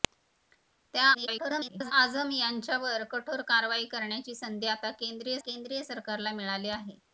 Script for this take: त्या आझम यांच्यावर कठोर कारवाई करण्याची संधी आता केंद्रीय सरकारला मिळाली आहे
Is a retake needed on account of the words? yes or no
yes